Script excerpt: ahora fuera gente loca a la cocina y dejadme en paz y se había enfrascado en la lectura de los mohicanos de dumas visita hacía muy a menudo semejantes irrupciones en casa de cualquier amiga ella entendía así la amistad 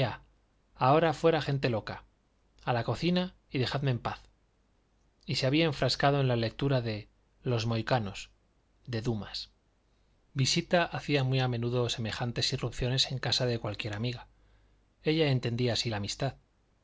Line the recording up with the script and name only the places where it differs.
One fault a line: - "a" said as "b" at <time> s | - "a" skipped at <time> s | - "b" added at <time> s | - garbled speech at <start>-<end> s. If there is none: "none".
none